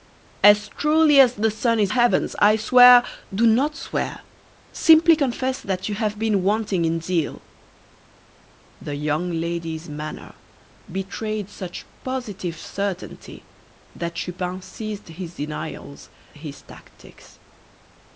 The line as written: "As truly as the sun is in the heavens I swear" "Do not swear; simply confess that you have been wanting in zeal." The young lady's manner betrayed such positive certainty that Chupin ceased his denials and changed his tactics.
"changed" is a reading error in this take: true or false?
true